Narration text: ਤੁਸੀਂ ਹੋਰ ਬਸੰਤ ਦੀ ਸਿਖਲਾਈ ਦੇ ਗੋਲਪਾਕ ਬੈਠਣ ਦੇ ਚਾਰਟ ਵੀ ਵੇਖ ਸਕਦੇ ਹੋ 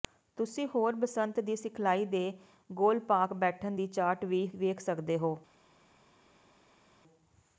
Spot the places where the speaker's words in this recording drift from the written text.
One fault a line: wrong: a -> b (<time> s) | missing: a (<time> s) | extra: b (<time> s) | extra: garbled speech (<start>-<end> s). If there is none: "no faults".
wrong: ਦੇ -> ਦੀ (3.7 s)